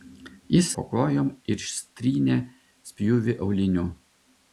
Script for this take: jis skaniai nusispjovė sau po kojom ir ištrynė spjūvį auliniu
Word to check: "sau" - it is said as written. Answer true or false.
false